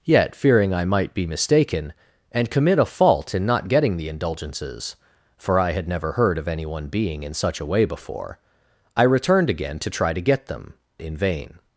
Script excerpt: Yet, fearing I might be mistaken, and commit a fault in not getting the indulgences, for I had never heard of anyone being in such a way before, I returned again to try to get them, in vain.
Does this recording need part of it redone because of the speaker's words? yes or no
no